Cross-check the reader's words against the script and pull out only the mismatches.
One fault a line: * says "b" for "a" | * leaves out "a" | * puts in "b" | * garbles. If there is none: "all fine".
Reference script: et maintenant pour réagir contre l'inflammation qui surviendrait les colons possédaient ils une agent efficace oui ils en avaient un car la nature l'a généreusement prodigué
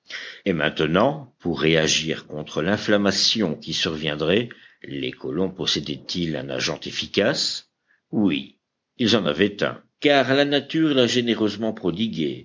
* says "un" for "une"